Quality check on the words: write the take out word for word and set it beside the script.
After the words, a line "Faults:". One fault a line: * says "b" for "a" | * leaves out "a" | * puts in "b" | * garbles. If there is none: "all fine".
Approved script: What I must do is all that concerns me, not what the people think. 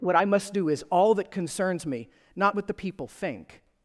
What I must do is all that concerns me, not what the people think.
Faults:
all fine